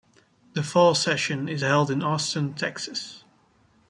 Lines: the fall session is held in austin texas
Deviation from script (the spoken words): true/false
false